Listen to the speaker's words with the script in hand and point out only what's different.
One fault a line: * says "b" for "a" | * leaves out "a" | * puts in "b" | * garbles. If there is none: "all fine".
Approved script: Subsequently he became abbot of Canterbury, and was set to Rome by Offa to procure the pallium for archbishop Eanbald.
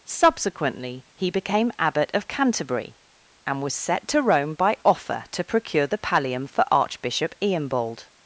all fine